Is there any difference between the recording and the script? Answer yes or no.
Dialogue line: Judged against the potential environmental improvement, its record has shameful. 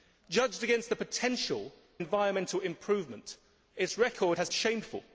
no